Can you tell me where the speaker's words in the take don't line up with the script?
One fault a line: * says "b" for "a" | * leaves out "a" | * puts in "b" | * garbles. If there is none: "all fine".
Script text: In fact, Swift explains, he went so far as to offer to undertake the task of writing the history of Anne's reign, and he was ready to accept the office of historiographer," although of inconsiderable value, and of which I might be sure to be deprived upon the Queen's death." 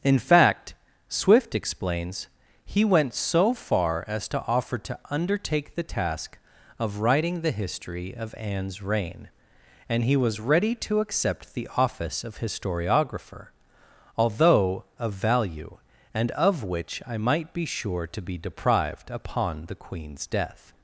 * leaves out "inconsiderable"